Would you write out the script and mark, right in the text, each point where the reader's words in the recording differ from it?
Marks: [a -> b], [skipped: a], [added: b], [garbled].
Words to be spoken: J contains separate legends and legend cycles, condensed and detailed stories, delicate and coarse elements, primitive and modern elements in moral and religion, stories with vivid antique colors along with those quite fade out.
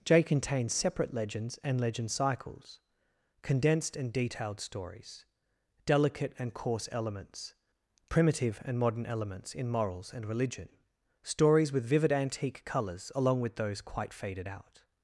J contains separate legends and legend cycles, condensed and detailed stories, delicate and coarse elements, primitive and modern elements in [moral -> morals] and religion, stories with vivid antique colors along with those quite [fade -> faded] out.